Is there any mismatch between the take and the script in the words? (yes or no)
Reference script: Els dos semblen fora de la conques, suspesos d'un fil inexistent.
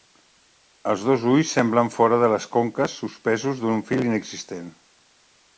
yes